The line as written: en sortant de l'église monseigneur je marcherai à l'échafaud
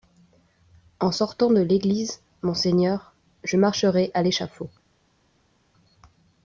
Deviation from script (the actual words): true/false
false